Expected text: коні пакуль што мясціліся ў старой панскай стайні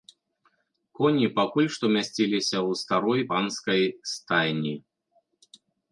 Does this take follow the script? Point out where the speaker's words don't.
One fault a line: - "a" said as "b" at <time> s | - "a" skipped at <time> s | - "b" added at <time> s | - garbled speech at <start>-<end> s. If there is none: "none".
none